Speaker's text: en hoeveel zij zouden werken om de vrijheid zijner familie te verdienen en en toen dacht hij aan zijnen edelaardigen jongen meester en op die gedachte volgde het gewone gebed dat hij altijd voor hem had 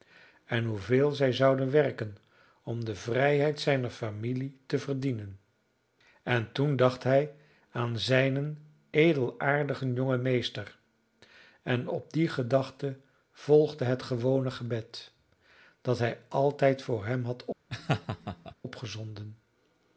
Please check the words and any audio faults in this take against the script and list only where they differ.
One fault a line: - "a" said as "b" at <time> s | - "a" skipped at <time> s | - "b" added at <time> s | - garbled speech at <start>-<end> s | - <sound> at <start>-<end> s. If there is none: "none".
- "en" skipped at 6.5 s
- laugh at 17.7-18.5 s